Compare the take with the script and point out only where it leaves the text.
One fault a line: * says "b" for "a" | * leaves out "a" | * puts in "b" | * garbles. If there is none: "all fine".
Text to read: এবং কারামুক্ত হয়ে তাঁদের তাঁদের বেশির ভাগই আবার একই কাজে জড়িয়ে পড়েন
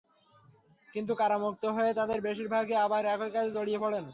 * says "কিন্তু" for "এবং"
* leaves out "তাঁদের"